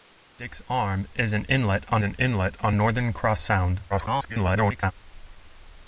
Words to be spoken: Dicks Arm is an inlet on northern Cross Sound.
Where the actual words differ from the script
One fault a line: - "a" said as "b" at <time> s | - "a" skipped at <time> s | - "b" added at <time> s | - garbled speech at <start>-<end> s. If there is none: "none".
- "an inlet on" added at 2.0 s
- garbled speech at 3.9-4.9 s